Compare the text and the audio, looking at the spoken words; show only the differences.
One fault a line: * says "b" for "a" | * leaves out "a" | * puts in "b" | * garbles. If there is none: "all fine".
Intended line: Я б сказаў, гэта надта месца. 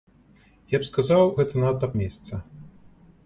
all fine